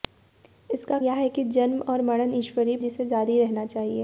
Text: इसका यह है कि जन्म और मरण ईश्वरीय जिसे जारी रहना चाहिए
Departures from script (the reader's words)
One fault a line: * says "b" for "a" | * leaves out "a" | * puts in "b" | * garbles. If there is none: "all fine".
all fine